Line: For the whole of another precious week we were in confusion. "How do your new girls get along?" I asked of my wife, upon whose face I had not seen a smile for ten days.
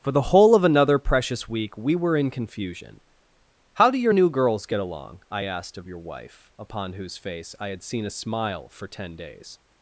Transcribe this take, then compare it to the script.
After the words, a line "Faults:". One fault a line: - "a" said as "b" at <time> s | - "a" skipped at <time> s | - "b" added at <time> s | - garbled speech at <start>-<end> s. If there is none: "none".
For the whole of another precious week we were in confusion. "How do your new girls get along?" I asked of your wife, upon whose face I had seen a smile for ten days.
Faults:
- "my" said as "your" at 5.9 s
- "not" skipped at 7.8 s